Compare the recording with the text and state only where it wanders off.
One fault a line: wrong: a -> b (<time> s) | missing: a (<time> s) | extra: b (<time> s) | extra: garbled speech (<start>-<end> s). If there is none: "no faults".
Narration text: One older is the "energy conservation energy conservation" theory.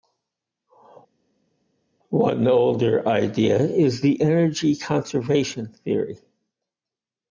extra: idea (3.1 s)
missing: energy conservation (5.7 s)